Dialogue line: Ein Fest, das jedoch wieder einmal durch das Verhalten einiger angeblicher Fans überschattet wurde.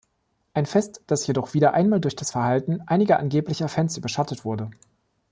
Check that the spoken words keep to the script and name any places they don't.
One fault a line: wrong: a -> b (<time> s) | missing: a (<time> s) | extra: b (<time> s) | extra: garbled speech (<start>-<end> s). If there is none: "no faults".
no faults